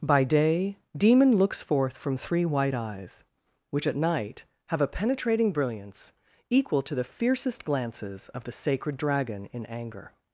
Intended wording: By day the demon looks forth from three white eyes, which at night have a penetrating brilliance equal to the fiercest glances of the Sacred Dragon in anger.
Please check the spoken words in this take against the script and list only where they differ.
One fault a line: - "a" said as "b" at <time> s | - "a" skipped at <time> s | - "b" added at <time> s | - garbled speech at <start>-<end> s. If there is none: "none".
- "the" skipped at 0.8 s